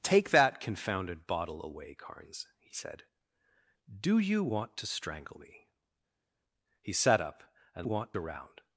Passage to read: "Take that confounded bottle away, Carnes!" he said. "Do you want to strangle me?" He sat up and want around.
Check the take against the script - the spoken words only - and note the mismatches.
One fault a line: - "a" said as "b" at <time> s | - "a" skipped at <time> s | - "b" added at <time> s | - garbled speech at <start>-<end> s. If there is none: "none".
none